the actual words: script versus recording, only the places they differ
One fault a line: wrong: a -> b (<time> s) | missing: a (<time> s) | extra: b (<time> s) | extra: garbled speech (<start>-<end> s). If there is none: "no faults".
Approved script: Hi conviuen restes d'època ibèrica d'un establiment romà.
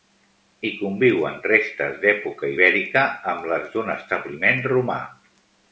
extra: amb les (3.3 s)